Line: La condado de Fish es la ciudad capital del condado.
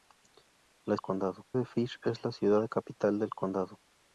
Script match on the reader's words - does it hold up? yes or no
yes